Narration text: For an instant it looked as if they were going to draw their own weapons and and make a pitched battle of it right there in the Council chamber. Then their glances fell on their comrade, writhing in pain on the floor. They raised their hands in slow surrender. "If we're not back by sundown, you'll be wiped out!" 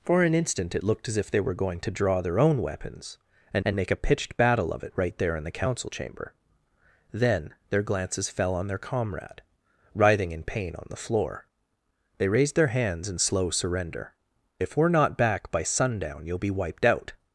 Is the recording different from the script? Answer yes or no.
no